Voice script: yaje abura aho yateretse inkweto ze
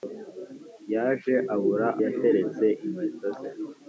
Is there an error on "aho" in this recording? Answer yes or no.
yes